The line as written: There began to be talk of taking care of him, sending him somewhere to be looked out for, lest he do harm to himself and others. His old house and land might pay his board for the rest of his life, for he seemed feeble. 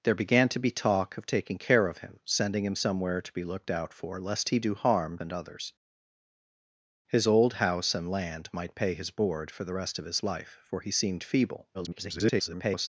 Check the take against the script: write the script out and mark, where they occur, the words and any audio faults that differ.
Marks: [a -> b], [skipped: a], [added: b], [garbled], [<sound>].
There began to be talk of taking care of him, sending him somewhere to be looked out for, lest he do harm [skipped: to himself] and others. His old house and land might pay his board for the rest of his life, for he seemed feeble. [garbled]